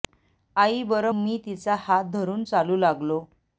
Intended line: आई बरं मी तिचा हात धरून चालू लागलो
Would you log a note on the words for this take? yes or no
no